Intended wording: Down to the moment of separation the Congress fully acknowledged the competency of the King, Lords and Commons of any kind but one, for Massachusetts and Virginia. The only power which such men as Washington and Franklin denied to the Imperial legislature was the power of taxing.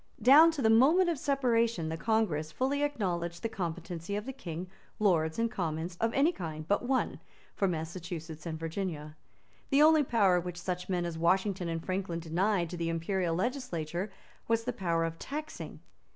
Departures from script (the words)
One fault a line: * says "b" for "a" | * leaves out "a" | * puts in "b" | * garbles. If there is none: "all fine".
all fine